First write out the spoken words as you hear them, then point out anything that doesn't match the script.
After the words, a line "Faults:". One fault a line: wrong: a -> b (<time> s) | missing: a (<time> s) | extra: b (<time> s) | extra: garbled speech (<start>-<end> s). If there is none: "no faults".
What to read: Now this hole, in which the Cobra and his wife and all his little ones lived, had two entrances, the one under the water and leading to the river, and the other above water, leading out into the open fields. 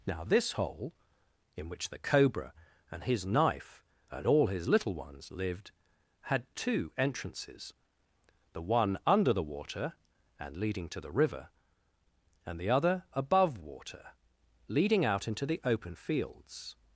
Now this hole, in which the Cobra and his knife and all his little ones lived, had two entrances, the one under the water and leading to the river, and the other above water, leading out into the open fields.
Faults:
wrong: wife -> knife (3.2 s)